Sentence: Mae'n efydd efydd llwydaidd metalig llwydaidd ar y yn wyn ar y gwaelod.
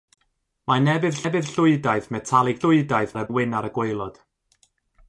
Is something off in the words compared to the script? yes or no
no